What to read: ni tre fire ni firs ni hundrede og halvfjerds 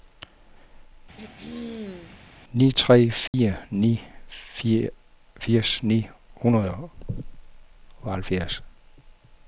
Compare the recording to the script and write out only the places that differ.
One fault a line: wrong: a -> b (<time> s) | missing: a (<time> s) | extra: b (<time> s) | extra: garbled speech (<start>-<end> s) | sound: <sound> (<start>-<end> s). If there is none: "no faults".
sound: throat clearing (1.2-2.2 s)
sound: dropout (3.3-3.3 s)